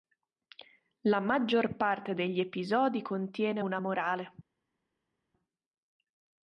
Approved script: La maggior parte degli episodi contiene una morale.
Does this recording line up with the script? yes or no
yes